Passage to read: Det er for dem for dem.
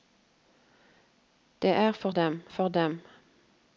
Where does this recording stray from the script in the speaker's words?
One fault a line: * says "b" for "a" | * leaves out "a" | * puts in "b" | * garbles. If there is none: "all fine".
all fine